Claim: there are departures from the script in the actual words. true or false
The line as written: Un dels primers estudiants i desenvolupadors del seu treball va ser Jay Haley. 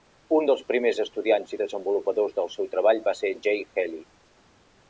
false